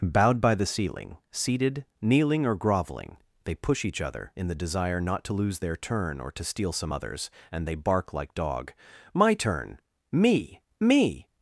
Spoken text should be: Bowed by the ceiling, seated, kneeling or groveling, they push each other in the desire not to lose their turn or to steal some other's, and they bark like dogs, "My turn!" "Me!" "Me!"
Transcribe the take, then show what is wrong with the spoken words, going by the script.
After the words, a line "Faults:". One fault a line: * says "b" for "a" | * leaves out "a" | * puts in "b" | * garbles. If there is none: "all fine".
Bowed by the ceiling, seated, kneeling or groveling, they push each other in the desire not to lose their turn or to steal some other's, and they bark like dog, "My turn!" "Me!" "Me!"
Faults:
* says "dog" for "dogs"